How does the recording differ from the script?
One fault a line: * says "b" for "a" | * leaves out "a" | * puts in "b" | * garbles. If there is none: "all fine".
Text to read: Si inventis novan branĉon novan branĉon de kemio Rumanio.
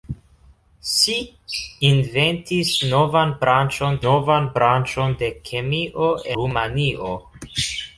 all fine